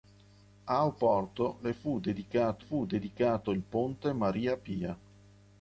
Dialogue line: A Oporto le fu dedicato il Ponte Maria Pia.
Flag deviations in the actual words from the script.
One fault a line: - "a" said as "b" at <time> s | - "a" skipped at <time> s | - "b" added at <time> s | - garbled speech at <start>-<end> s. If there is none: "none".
- "fu dedicato" added at 2.6 s